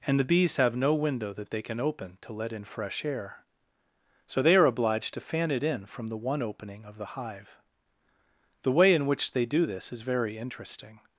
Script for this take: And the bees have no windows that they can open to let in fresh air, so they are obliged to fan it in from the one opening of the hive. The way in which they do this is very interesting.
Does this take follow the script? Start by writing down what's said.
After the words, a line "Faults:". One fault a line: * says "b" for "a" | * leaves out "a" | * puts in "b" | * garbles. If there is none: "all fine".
And the bees have no window that they can open to let in fresh air, so they are obliged to fan it in from the one opening of the hive. The way in which they do this is very interesting.
Faults:
* says "window" for "windows"